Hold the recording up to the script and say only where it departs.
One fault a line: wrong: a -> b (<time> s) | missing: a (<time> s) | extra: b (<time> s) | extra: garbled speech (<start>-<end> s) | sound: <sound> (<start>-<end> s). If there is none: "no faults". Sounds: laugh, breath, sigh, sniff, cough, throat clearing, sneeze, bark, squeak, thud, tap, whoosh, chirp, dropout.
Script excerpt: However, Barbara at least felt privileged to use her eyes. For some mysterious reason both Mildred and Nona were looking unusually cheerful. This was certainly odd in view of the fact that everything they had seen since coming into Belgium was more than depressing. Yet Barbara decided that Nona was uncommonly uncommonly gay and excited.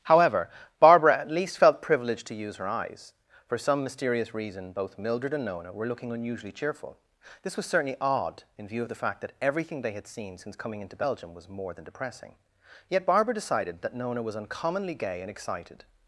missing: uncommonly (14.9 s)